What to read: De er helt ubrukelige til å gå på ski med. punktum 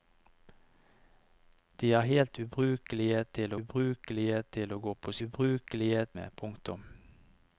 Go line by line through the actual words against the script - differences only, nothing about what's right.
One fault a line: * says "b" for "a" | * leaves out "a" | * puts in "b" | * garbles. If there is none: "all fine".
* puts in "ubrukelige til"
* says "ubrukelige" for "ski"